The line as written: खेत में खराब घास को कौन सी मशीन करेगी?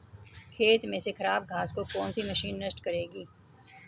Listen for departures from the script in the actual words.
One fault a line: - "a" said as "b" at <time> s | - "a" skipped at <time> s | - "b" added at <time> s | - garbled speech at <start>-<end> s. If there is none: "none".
- "से" added at 1.0 s
- "नष्ट" added at 2.6 s